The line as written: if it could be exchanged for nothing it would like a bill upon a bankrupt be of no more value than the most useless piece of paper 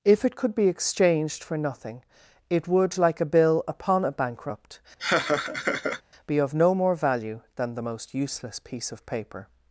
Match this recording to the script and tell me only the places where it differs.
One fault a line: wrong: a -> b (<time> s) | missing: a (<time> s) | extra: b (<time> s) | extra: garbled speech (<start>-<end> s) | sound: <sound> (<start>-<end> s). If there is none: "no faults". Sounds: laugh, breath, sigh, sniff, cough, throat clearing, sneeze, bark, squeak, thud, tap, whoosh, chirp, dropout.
sound: laugh (5.0-6.0 s)